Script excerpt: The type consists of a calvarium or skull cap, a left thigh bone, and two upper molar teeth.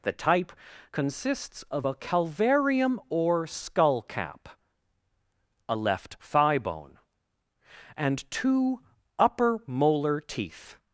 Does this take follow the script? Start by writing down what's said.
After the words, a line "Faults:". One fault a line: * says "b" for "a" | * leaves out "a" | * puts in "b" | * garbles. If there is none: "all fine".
The type consists of a calvarium or skull cap, a left thigh bone, and two upper molar teeth.
Faults:
all fine